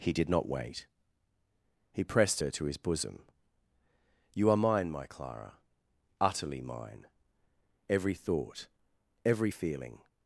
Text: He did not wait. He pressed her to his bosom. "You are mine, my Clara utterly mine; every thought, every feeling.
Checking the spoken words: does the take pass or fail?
pass